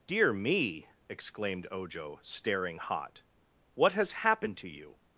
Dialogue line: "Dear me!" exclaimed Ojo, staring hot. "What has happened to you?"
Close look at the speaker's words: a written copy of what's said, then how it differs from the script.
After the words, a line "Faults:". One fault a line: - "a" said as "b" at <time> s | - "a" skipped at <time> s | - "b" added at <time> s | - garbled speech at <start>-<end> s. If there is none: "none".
"Dear me!" exclaimed Ojo, staring hot. "What has happened to you?"
Faults:
none